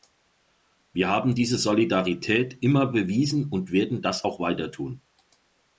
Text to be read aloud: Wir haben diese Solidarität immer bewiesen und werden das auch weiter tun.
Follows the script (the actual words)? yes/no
yes